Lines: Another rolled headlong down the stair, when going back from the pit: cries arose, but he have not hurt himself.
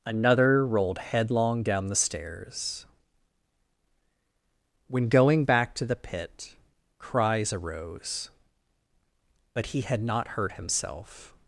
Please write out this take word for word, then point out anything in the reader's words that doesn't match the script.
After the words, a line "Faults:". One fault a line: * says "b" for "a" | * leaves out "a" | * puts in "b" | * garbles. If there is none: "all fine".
Another rolled headlong down the stairs, when going back to the pit: cries arose, but he had not hurt himself.
Faults:
* says "stairs" for "stair"
* says "to" for "from"
* says "had" for "have"